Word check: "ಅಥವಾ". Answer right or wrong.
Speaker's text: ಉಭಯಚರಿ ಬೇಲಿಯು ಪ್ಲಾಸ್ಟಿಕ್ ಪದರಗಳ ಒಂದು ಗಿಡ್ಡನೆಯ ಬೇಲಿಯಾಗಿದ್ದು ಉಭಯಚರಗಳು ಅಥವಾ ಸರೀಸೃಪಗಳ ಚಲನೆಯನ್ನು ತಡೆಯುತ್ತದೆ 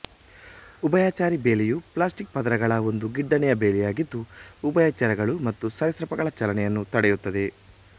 wrong